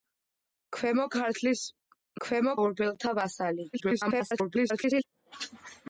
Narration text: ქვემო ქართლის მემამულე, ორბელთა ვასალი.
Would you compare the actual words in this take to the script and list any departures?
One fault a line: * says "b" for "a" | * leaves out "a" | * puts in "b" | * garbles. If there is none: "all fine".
* says "ქვემო" for "მემამულე"
* garbles